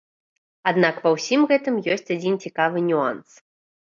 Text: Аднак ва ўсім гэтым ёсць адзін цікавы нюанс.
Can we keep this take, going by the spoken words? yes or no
yes